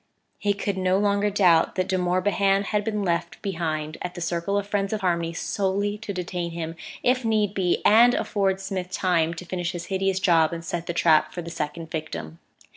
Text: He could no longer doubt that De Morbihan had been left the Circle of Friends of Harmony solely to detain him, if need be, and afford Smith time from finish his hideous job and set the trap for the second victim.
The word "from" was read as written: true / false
false